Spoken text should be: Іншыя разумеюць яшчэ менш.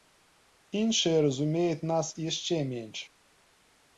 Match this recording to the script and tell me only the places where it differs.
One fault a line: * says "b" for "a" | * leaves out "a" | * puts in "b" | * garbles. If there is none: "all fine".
* puts in "нас"